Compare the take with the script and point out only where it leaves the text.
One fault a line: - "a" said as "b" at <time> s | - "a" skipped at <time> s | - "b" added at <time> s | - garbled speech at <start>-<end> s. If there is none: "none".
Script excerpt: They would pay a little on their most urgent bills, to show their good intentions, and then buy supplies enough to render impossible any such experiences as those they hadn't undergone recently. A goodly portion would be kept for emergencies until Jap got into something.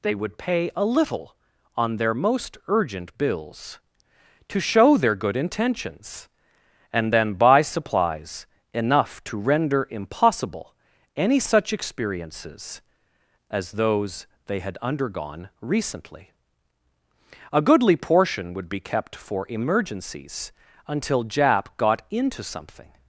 - "hadn't" said as "had" at 14.6 s